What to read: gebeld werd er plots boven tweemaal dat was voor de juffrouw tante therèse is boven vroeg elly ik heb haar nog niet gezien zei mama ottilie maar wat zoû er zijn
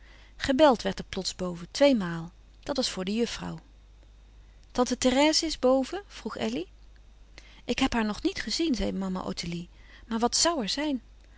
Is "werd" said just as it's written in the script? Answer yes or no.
yes